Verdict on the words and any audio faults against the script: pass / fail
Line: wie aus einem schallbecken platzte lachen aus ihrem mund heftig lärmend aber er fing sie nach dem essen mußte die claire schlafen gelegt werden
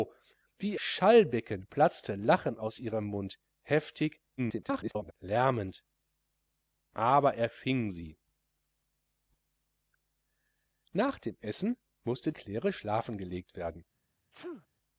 fail